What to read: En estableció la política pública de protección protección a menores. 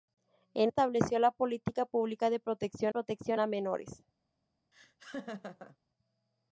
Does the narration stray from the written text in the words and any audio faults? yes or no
yes